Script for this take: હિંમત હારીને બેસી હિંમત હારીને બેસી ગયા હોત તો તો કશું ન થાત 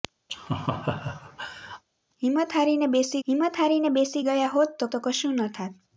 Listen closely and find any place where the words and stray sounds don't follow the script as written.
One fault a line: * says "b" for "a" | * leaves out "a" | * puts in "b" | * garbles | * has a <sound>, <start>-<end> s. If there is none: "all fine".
* has a laugh, 0.3-1.8 s